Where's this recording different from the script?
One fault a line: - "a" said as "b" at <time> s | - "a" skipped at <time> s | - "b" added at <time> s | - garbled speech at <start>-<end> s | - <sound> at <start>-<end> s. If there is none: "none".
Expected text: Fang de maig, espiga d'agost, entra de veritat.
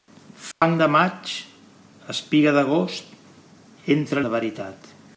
- dropout at 0.5-0.6 s